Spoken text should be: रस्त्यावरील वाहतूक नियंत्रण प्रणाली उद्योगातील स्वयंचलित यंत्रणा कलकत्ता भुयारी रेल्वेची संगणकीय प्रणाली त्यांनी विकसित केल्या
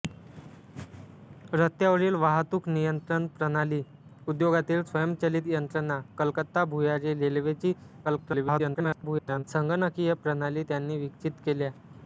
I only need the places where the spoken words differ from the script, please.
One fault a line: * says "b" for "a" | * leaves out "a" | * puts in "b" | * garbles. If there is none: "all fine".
* garbles